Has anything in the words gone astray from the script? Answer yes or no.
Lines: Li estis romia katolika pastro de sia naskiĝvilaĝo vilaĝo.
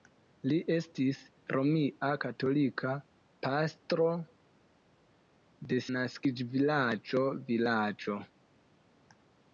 yes